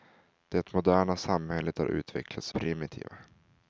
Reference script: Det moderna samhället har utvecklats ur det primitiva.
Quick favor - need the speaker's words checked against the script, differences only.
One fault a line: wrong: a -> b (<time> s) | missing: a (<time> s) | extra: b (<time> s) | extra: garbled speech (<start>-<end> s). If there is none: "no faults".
missing: ur det (2.5 s)